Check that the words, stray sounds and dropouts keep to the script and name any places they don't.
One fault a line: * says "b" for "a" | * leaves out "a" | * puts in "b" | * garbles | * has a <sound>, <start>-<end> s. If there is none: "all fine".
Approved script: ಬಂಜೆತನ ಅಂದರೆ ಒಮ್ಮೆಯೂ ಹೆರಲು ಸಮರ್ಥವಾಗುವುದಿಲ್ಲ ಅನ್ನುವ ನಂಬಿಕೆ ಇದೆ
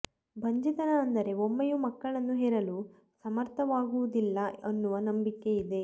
* puts in "ಮಕ್ಕಳನ್ನು"